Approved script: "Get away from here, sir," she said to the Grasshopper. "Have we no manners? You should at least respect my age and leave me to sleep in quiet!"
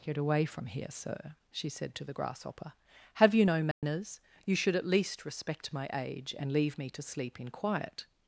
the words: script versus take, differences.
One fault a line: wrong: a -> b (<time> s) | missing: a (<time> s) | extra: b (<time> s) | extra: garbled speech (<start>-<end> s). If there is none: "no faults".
wrong: we -> you (3.4 s)